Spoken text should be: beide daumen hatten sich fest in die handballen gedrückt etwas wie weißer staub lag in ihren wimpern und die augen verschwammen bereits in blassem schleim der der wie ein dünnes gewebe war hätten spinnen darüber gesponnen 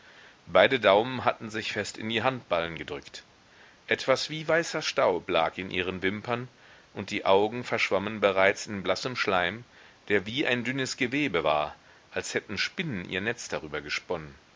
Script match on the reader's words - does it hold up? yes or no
no